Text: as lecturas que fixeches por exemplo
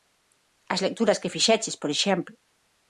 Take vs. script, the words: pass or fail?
pass